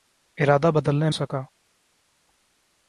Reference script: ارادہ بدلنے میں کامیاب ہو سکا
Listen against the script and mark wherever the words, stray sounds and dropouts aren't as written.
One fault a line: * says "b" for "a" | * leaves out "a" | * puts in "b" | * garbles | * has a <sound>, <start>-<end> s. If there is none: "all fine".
* leaves out "میں کامیاب ہو"